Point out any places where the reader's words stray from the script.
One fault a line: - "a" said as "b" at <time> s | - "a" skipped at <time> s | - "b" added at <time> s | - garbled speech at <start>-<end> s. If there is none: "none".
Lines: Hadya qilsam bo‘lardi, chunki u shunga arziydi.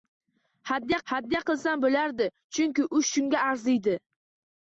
- "hadya" added at 1.1 s